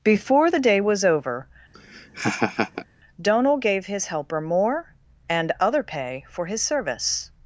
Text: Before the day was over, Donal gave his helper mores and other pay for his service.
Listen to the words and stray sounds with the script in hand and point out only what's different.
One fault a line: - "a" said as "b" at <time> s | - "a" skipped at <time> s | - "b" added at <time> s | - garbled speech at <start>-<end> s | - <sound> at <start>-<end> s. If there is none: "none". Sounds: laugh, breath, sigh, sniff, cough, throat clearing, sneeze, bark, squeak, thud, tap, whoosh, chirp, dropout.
- laugh at 1.7-2.9 s
- "mores" said as "more" at 4.4 s